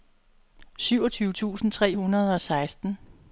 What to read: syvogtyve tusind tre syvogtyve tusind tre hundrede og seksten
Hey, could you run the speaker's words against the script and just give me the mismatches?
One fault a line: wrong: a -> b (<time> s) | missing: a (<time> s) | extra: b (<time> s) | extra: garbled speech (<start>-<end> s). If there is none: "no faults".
missing: syvogtyve tusind tre (2.0 s)